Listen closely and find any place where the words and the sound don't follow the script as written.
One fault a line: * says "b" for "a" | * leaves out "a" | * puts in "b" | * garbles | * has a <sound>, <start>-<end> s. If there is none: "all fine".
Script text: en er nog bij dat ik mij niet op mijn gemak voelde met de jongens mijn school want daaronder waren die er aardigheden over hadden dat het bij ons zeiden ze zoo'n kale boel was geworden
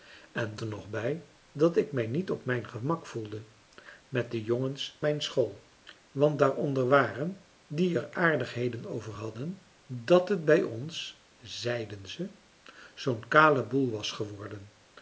all fine